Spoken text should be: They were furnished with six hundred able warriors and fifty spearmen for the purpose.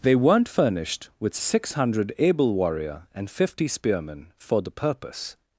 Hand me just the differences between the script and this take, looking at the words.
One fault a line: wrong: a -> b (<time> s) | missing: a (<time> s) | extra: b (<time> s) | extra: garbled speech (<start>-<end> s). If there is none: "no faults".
wrong: were -> weren't (0.1 s)
wrong: warriors -> warrior (2.5 s)